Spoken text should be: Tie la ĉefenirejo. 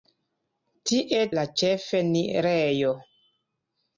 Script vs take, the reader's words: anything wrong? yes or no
no